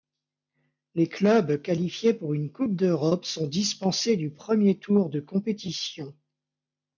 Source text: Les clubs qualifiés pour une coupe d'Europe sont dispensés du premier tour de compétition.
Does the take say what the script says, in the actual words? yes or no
yes